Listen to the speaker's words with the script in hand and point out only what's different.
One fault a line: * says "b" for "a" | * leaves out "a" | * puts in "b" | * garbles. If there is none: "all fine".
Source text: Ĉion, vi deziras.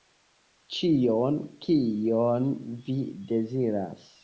* puts in "kion"